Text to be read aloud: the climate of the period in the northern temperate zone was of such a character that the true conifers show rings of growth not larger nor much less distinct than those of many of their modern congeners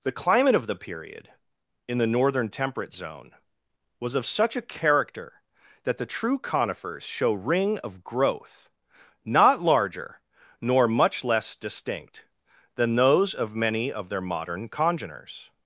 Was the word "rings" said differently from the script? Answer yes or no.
yes